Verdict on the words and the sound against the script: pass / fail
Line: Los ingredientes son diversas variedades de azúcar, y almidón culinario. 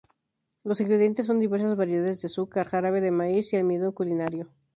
fail